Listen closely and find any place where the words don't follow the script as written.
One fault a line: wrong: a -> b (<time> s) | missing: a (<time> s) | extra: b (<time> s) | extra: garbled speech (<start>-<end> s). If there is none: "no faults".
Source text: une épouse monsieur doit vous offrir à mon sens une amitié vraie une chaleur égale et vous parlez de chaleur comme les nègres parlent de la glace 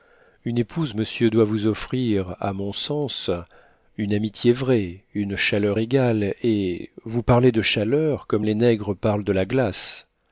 no faults